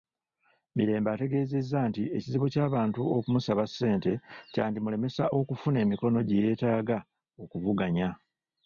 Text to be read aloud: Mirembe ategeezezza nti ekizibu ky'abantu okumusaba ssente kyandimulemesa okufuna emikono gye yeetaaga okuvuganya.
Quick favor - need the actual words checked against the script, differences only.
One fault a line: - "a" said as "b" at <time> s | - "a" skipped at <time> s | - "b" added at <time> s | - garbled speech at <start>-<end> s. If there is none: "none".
none